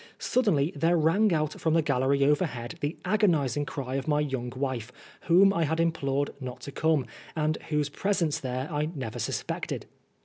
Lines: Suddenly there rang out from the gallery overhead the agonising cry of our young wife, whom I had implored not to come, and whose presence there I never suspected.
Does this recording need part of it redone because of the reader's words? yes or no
yes